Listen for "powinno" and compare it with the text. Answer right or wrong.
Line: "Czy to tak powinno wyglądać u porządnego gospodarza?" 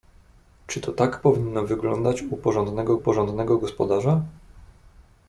right